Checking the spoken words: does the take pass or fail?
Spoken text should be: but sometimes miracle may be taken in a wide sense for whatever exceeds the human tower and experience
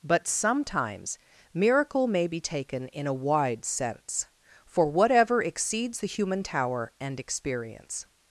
pass